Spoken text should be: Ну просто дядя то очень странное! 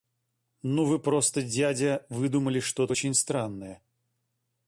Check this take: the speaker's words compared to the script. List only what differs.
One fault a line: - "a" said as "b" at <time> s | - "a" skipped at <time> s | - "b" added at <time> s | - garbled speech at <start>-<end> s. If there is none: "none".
- "вы" added at 0.8 s
- "выдумали что" added at 2.1 s